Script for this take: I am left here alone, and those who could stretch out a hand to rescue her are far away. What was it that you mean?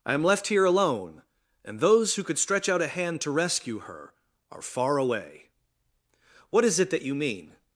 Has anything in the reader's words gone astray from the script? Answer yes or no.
yes